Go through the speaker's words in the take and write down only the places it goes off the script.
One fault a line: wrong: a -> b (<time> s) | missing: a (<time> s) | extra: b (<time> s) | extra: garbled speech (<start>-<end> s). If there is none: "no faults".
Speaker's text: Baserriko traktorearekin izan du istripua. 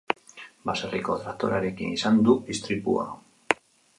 no faults